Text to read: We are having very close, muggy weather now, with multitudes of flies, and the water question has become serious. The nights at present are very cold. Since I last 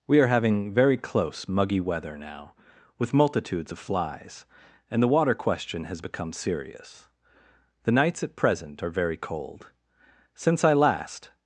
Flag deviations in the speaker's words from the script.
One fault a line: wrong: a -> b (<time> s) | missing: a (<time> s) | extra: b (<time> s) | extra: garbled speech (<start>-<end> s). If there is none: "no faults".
no faults